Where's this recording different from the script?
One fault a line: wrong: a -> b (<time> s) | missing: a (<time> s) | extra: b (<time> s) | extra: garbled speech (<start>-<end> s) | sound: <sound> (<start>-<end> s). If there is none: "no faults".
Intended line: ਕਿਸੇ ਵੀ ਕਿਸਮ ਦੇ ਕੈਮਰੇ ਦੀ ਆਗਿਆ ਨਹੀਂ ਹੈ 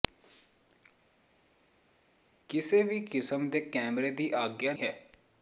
missing: ਨਹੀਂ (4.7 s)